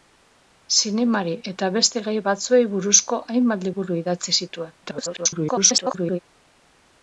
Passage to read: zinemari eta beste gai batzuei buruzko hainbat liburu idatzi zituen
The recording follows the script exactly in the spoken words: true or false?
false